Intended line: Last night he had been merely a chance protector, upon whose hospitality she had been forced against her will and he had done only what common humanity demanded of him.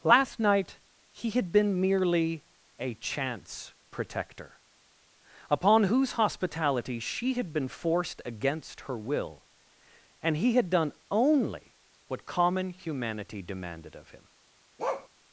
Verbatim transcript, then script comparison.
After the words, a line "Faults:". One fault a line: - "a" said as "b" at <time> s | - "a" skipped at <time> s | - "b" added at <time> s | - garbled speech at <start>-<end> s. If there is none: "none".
Last night he had been merely a chance protector, upon whose hospitality she had been forced against her will and he had done only what common humanity demanded of him.
Faults:
none